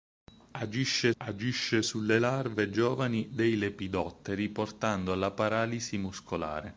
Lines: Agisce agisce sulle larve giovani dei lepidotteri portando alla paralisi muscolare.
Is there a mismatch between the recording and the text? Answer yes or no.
no